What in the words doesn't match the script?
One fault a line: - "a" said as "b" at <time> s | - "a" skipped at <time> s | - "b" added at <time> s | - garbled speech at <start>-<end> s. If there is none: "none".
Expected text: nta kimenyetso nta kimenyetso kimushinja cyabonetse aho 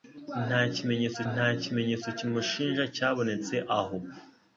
none